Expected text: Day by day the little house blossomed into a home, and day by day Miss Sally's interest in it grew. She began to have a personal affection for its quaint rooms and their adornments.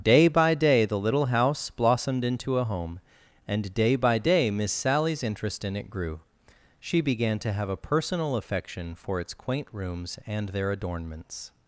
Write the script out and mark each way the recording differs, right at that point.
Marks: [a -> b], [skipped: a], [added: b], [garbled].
Day by day the little house blossomed into a home, and day by day Miss Sally's interest in it grew. She began to have a personal affection for its quaint rooms and their adornments.